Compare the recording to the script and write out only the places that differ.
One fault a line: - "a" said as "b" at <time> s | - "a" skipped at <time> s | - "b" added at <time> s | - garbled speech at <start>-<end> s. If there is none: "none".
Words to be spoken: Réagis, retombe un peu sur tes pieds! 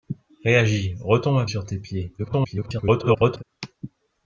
- "peu" skipped at 1.4 s
- garbled speech at 2.2-3.4 s